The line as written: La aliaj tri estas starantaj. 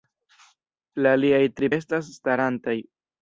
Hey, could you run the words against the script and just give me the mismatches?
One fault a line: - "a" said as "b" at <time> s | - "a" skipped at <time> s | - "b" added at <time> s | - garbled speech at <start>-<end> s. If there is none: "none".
none